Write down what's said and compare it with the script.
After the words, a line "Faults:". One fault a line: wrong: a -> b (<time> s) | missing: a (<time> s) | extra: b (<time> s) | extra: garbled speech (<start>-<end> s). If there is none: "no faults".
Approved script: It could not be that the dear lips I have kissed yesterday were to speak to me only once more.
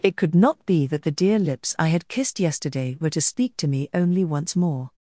It could not be that the dear lips I had kissed yesterday were to speak to me only once more.
Faults:
wrong: have -> had (1.9 s)